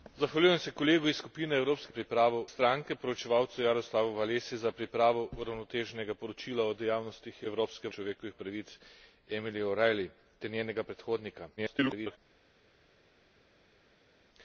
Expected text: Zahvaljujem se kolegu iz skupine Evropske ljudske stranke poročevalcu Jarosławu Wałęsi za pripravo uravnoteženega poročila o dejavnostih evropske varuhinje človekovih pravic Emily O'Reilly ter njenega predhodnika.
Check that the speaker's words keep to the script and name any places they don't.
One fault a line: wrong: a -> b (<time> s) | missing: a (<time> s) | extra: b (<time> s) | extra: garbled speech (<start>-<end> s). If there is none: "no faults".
wrong: ljudske -> pripravo (1.9 s)
missing: varuhinje (7.9 s)
extra: garbled speech (11.6-12.2 s)